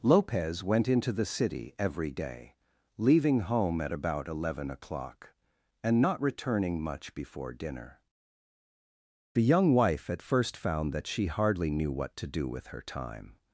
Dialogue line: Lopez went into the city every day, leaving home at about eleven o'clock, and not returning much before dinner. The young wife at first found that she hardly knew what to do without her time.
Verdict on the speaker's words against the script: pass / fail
fail